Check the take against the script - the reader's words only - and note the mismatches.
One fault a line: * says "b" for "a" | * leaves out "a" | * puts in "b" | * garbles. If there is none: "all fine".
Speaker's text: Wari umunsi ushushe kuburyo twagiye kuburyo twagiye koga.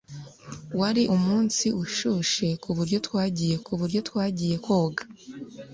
all fine